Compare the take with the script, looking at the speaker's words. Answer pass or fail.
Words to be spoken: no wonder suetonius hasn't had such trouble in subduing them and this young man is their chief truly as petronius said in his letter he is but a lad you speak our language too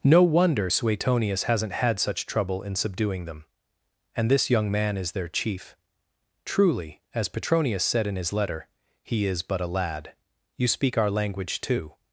pass